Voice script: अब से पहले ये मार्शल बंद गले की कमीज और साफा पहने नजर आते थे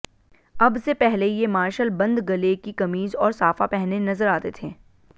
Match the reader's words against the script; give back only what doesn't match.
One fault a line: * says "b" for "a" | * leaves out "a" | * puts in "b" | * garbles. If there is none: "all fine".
all fine